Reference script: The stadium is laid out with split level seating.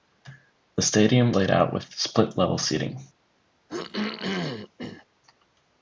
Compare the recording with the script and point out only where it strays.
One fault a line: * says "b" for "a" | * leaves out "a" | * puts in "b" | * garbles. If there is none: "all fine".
* leaves out "is"